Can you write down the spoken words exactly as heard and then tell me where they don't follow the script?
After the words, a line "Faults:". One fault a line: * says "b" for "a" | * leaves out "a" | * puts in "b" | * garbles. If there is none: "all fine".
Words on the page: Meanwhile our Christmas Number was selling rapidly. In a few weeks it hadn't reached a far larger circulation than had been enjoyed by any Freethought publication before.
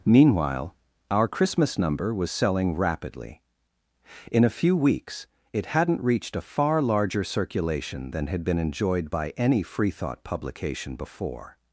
Meanwhile our Christmas Number was selling rapidly. In a few weeks it hadn't reached a far larger circulation than had been enjoyed by any Freethought publication before.
Faults:
all fine